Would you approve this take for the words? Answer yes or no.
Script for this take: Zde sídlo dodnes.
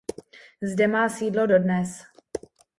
no